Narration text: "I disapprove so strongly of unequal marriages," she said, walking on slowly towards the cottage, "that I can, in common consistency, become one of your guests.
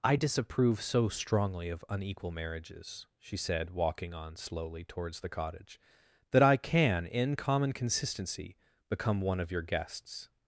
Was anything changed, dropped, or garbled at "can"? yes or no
no